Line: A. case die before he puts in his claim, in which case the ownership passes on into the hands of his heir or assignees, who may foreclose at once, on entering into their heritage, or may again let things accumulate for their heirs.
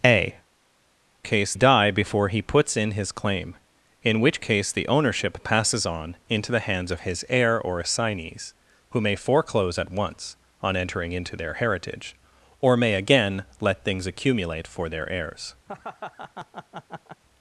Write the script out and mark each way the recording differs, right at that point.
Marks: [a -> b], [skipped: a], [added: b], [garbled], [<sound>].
A. case die before he puts in his claim, in which case the ownership passes on into the hands of his heir or assignees, who may foreclose at once, on entering into their heritage, or may again let things accumulate for their heirs. [laugh]